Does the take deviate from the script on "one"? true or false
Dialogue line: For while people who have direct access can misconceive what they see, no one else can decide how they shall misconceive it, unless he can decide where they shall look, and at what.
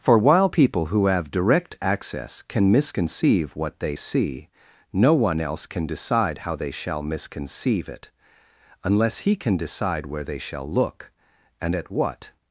false